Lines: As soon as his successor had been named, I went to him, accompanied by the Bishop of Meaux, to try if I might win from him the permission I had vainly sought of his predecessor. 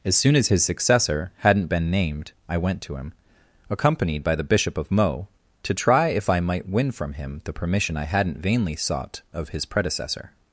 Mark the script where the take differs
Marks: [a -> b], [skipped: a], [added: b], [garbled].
As soon as his successor [had -> hadn't] been named, I went to him, accompanied by the Bishop of Meaux, to try if I might win from him the permission I [had -> hadn't] vainly sought of his predecessor.